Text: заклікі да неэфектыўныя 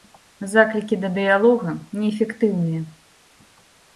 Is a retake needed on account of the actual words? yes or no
yes